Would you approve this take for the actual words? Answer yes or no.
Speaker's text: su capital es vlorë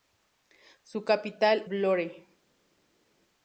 no